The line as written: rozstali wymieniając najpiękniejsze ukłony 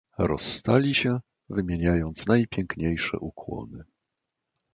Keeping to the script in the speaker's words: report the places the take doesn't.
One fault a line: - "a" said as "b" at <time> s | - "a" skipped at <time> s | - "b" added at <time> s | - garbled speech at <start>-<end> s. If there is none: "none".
- "się" added at 0.9 s